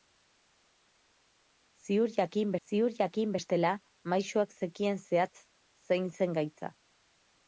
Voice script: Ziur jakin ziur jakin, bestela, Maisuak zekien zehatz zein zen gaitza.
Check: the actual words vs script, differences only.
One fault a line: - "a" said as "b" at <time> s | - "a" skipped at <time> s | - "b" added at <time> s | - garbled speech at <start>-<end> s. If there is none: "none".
none